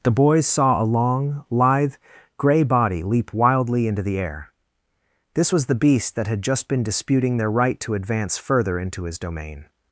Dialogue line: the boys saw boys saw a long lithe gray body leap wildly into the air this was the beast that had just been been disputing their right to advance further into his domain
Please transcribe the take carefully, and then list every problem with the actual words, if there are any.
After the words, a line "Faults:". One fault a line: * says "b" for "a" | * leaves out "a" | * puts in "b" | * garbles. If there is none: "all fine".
the boys saw a long lithe gray body leap wildly into the air this was the beast that had just been disputing their right to advance further into his domain
Faults:
* leaves out "boys saw"
* leaves out "been"